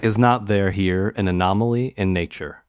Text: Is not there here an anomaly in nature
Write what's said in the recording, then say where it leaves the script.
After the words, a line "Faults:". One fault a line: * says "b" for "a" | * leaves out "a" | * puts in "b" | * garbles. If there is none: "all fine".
Is not there here an anomaly in nature
Faults:
all fine